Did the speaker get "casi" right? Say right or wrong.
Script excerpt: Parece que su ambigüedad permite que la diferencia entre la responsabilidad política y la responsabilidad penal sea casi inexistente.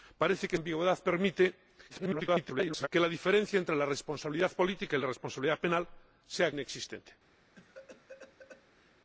wrong